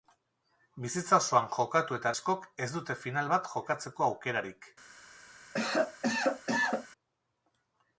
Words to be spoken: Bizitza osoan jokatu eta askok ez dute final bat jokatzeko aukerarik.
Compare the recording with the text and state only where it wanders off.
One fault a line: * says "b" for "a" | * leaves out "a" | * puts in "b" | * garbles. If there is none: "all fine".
all fine